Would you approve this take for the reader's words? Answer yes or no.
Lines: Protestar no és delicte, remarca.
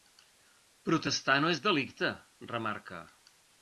yes